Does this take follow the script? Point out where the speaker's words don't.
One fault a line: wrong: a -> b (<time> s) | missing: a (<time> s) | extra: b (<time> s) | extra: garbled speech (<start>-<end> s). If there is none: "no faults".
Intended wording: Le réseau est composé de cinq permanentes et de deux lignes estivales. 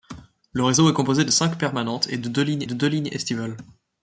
extra: de deux lignes (2.6 s)